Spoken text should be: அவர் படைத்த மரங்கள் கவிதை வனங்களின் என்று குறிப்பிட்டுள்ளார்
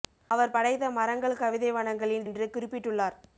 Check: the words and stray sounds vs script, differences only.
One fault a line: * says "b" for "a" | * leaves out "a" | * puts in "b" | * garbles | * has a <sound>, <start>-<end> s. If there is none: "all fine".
all fine